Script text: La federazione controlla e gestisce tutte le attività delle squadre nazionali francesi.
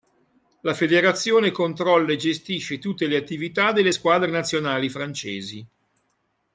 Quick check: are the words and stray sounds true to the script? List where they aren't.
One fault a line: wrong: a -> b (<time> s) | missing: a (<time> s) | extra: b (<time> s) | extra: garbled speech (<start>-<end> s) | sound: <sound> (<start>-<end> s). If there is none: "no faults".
no faults